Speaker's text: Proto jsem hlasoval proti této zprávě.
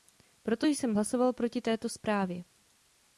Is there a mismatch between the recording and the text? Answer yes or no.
no